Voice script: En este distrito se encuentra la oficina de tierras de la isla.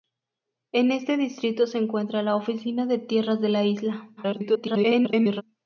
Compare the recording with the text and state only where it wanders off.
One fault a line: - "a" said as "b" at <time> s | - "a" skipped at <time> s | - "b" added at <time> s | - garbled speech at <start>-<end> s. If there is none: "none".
- garbled speech at 4.2-5.4 s